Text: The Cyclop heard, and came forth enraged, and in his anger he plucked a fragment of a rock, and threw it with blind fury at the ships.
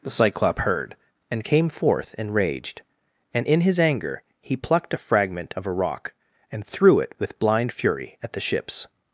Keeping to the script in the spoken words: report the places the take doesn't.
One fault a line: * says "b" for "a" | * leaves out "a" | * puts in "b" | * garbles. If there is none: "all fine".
all fine